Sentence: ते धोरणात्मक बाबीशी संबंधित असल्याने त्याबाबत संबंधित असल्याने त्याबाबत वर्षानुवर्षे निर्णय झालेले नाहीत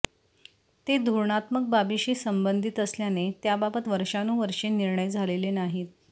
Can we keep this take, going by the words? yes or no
no